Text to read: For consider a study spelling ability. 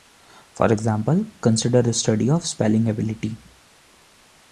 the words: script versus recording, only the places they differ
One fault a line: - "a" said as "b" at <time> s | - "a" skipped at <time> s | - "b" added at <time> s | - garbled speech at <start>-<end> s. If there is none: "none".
- "example" added at 0.7 s
- "of" added at 2.3 s